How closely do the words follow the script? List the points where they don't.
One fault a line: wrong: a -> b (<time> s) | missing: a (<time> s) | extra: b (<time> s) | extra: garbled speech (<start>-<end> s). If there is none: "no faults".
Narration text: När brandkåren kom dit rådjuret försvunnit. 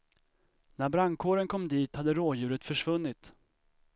extra: hade (2.0 s)